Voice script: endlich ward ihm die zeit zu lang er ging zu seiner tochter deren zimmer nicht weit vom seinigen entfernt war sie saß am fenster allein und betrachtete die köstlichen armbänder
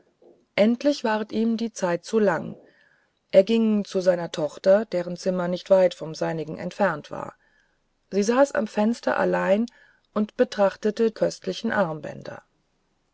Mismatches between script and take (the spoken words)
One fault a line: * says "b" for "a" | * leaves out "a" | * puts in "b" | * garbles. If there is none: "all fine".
* leaves out "die"